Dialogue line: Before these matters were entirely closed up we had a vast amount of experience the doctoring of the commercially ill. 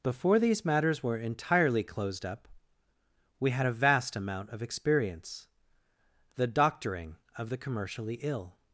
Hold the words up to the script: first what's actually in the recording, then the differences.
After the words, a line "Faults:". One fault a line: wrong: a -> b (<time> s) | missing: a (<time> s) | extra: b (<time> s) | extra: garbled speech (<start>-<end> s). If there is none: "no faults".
Before these matters were entirely closed up we had a vast amount of experience the doctoring of the commercially ill.
Faults:
no faults